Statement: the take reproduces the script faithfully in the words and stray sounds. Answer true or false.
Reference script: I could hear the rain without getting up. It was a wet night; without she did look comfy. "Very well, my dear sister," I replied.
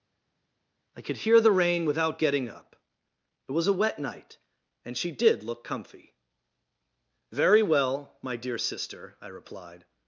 false